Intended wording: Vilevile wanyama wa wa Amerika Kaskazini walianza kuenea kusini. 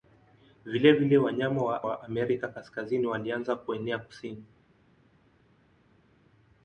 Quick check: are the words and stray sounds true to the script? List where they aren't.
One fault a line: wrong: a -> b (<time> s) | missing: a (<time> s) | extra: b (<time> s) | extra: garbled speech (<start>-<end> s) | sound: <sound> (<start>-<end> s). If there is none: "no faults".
no faults